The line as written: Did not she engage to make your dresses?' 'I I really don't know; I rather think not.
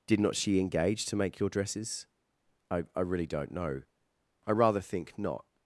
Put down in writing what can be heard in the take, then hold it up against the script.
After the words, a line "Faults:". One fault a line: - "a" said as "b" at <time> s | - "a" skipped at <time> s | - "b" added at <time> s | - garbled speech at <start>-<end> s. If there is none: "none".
Did not she engage to make your dresses?' 'I I really don't know; I rather think not.
Faults:
none